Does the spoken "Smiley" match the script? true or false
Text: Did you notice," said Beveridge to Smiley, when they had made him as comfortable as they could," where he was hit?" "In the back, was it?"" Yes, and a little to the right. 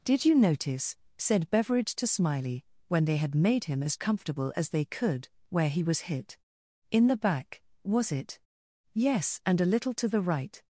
true